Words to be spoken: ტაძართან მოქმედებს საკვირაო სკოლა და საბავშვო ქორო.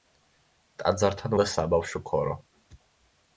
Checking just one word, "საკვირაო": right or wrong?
wrong